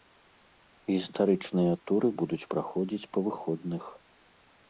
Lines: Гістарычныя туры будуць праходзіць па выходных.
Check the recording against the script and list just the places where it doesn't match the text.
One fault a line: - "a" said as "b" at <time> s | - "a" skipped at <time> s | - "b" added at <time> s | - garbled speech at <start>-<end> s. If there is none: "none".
none